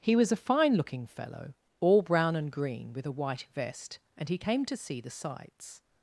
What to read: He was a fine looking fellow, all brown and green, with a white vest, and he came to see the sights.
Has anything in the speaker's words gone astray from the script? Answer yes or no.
no